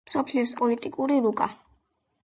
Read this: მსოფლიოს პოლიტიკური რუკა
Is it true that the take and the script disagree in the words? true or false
false